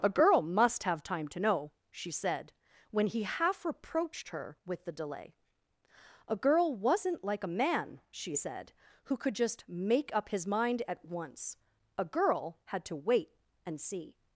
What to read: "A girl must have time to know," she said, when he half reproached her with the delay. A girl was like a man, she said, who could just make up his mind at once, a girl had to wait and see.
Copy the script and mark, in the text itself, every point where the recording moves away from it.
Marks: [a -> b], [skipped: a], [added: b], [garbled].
"A girl must have time to know," she said, when he half reproached her with the delay. A girl [was -> wasn't] like a man, she said, who could just make up his mind at once, a girl had to wait and see.